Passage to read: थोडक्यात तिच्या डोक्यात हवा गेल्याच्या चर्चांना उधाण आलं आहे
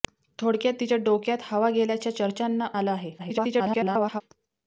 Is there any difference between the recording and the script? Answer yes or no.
yes